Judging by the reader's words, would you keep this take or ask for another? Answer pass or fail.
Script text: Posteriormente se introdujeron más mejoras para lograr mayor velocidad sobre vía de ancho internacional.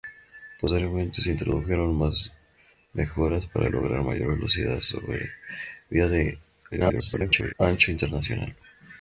fail